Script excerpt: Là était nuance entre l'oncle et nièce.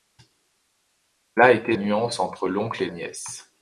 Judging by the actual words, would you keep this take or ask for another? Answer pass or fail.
pass